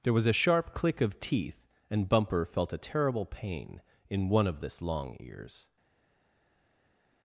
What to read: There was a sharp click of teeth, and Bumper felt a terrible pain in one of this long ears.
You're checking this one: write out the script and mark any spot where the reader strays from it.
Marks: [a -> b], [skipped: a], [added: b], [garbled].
There was a sharp click of teeth, and Bumper felt a terrible pain in one of this long ears.